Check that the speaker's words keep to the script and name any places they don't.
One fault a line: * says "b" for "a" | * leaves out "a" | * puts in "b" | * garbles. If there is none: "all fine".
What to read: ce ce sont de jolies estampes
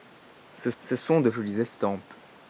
all fine